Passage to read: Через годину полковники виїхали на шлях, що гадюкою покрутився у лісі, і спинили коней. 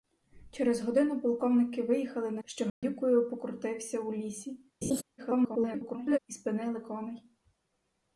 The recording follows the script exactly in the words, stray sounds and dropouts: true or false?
false